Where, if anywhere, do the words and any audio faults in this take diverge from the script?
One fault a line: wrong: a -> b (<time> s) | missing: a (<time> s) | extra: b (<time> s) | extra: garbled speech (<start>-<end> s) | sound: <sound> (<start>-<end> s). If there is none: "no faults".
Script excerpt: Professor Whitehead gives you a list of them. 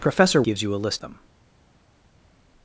missing: Whitehead (0.4 s)
missing: of (1.0 s)